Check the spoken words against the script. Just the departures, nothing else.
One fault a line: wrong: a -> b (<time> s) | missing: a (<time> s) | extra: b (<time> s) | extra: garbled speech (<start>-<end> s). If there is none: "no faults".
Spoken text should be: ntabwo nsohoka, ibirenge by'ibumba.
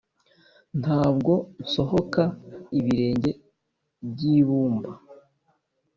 no faults